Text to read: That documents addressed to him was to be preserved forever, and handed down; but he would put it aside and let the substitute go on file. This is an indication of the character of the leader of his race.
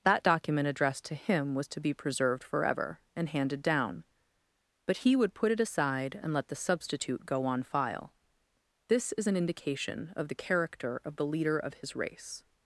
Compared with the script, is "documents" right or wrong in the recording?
wrong